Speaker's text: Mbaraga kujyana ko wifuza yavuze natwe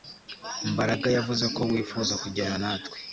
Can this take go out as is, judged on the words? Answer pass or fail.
fail